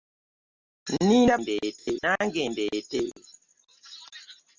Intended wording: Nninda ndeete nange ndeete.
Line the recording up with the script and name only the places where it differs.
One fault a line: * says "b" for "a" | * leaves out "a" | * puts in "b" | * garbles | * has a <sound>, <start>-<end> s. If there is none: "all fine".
* has a dropout, 1.8-1.9 s